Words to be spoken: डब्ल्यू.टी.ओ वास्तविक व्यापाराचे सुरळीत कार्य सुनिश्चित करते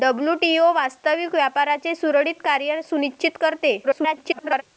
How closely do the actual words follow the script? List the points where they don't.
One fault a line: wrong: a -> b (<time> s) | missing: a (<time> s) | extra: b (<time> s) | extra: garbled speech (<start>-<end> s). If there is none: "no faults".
extra: garbled speech (3.8-4.6 s)